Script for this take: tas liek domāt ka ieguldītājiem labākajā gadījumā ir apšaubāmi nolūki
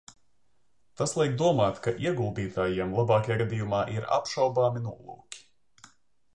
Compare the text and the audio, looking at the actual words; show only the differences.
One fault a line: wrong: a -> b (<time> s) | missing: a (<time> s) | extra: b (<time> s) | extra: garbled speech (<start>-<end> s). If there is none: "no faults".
no faults